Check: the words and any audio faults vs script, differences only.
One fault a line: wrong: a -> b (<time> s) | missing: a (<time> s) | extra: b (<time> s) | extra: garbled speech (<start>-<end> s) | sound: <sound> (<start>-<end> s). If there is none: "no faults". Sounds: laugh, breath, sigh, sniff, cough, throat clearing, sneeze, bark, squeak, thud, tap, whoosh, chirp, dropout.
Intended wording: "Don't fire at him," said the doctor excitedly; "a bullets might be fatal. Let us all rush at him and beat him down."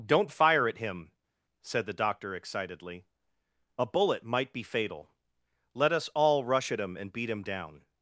wrong: bullets -> bullet (3.8 s)